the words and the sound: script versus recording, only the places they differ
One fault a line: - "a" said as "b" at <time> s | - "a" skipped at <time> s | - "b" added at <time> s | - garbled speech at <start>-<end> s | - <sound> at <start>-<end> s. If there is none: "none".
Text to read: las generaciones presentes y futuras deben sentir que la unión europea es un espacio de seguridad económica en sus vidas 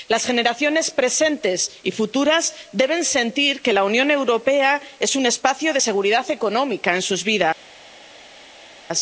none